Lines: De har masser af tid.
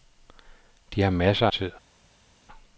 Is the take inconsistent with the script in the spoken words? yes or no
yes